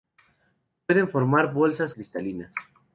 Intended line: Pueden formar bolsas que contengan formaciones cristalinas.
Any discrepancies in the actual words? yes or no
yes